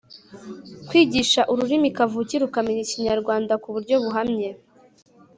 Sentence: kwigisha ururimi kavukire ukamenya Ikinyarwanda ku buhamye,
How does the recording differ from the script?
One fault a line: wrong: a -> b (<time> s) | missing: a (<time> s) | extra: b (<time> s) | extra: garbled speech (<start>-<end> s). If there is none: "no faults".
extra: buryo (3.7 s)